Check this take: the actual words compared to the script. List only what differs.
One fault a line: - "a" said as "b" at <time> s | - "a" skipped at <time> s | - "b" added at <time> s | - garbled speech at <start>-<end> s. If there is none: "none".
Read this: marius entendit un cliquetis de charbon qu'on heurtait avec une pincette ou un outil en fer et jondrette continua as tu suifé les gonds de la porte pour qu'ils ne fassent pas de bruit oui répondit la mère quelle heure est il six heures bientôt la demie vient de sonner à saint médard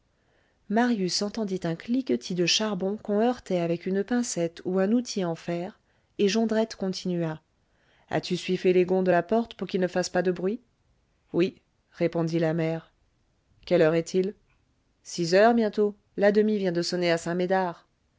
none